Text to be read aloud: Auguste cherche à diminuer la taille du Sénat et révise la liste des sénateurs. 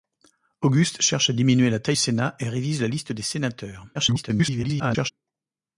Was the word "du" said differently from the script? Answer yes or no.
yes